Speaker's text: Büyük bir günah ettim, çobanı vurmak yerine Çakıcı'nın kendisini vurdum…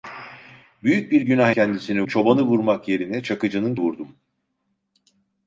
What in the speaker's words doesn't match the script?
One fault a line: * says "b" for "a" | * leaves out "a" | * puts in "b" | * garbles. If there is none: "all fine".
* says "kendisini" for "ettim"
* leaves out "kendisini"